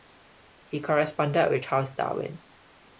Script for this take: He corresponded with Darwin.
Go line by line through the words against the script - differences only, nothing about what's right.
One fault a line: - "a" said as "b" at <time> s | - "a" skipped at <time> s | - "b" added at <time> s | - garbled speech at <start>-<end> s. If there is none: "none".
- "Charles" added at 1.6 s